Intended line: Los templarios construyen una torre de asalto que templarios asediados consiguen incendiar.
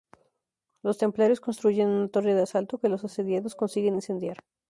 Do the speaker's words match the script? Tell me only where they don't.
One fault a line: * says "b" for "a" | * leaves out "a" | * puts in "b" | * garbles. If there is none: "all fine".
* says "los" for "templarios"